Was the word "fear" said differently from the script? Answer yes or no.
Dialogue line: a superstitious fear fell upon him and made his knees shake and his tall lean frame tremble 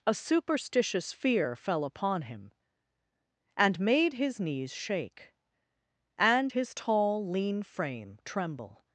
no